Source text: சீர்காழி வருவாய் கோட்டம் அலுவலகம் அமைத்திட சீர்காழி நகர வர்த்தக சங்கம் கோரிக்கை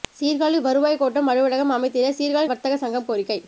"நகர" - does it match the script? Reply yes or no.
no